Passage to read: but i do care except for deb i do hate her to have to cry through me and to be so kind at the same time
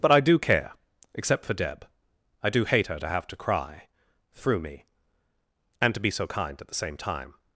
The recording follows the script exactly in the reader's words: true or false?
true